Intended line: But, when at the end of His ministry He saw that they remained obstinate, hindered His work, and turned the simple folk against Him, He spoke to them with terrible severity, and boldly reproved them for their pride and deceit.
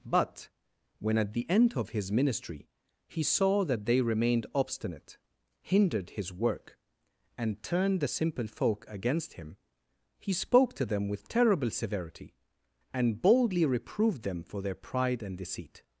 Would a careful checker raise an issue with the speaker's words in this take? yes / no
no